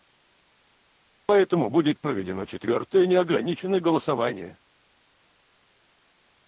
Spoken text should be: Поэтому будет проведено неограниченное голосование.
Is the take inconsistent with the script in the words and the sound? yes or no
yes